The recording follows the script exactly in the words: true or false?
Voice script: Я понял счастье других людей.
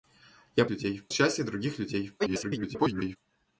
false